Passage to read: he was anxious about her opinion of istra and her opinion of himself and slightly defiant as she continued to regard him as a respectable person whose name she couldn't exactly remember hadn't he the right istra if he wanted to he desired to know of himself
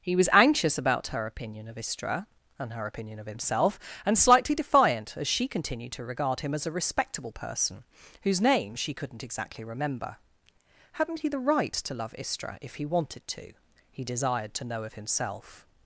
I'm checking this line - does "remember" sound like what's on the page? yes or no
yes